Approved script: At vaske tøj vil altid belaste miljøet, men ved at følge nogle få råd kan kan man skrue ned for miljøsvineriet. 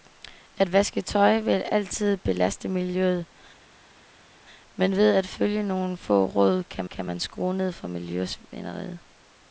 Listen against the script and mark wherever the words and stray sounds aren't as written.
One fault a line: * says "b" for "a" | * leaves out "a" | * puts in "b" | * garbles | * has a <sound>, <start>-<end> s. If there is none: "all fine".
all fine